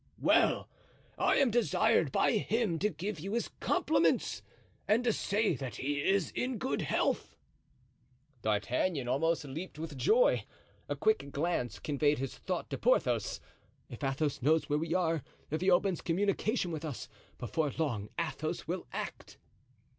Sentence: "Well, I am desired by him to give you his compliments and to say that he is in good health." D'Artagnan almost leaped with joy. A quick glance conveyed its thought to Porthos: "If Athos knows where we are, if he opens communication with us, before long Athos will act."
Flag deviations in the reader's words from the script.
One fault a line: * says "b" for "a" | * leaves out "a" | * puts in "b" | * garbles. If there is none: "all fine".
* says "his" for "its"